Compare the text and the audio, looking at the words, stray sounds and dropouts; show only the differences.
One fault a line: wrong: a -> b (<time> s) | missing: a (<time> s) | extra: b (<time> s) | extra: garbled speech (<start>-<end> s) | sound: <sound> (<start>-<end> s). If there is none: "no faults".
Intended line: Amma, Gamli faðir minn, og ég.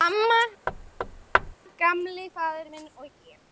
sound: thud (0.7-1.6 s)